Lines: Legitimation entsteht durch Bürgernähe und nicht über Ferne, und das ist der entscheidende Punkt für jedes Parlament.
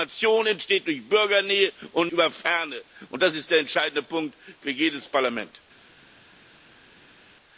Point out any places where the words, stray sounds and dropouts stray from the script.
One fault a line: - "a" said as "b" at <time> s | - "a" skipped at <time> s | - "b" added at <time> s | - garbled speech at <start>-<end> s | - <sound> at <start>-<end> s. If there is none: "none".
- "nicht" skipped at 2.1 s